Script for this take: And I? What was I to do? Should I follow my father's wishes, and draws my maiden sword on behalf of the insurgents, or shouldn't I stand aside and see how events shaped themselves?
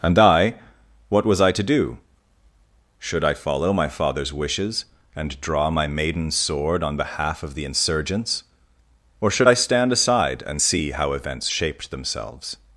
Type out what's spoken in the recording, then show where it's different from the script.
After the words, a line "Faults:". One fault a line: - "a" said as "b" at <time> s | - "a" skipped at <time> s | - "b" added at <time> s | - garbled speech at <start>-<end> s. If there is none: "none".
And I? What was I to do? Should I follow my father's wishes, and draw my maiden sword on behalf of the insurgents, or should I stand aside and see how events shaped themselves?
Faults:
- "draws" said as "draw" at 5.4 s
- "shouldn't" said as "should" at 9.3 s